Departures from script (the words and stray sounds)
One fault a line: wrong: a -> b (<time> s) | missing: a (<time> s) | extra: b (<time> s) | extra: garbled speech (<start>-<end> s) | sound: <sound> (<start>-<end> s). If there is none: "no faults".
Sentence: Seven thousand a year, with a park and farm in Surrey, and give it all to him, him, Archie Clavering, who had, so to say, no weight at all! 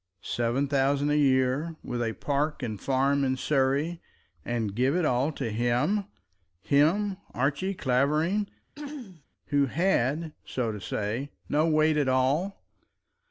sound: throat clearing (8.8-9.3 s)